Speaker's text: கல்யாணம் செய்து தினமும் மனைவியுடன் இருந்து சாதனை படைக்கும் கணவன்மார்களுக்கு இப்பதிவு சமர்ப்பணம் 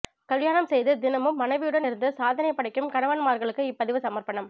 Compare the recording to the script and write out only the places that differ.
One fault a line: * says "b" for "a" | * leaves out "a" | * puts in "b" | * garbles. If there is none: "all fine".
all fine